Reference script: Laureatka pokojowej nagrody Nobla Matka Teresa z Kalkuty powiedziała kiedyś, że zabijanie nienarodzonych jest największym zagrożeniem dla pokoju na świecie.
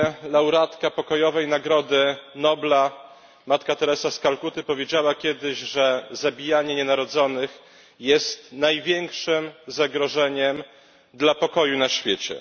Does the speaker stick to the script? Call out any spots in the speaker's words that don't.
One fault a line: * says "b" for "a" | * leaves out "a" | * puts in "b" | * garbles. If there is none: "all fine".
all fine